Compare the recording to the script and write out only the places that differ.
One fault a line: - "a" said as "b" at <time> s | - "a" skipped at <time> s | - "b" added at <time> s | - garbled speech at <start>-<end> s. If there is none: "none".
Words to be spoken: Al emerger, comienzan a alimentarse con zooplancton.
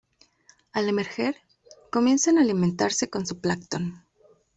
none